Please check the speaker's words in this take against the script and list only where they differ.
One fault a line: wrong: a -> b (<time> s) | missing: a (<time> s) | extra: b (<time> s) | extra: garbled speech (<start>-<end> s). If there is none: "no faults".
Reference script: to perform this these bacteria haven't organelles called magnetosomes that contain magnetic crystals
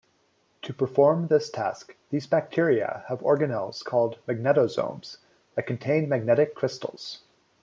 extra: task (1.5 s)
wrong: haven't -> have (3.1 s)